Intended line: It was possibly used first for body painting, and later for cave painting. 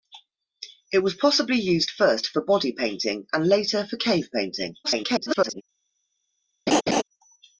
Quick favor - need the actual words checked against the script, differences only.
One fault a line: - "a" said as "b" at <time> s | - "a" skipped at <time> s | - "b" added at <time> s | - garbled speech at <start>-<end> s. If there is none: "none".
- garbled speech at 4.8-5.6 s